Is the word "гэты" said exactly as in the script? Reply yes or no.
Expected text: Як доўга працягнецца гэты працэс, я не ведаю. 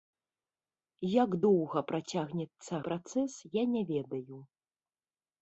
no